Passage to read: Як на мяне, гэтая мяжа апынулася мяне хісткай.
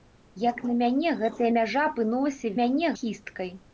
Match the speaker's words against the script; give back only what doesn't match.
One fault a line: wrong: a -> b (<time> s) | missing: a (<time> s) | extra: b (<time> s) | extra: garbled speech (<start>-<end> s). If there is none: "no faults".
no faults